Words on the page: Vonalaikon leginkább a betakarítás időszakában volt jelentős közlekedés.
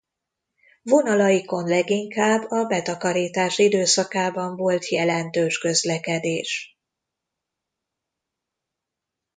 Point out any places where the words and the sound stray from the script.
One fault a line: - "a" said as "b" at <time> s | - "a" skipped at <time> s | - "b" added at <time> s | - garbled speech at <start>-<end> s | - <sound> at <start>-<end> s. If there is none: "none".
none